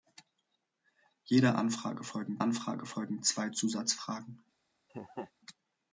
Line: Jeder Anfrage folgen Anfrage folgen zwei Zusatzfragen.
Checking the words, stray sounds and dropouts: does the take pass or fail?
fail